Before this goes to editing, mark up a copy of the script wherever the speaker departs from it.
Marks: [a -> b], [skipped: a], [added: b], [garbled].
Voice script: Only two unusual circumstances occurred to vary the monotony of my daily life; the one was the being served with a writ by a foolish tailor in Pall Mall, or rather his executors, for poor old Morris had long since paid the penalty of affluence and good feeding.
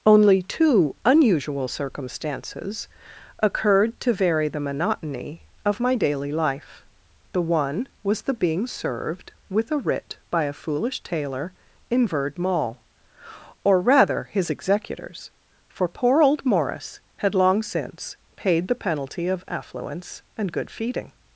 Only two unusual circumstances occurred to vary the monotony of my daily life; the one was the being served with a writ by a foolish tailor in [Pall -> Verd] Mall, or rather his executors, for poor old Morris had long since paid the penalty of affluence and good feeding.